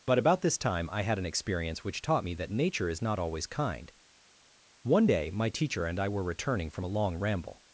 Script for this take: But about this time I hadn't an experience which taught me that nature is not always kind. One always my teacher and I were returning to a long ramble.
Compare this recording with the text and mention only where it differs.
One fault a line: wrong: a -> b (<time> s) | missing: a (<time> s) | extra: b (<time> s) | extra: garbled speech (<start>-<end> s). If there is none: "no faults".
wrong: hadn't -> had (1.0 s)
wrong: always -> day (5.0 s)
wrong: to -> from (6.7 s)